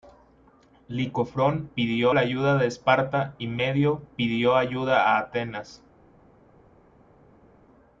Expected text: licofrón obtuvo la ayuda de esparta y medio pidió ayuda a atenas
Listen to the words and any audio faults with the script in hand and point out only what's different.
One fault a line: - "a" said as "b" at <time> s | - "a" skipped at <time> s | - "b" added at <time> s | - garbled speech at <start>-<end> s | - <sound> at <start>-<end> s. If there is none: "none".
- "obtuvo" said as "pidió" at 1.7 s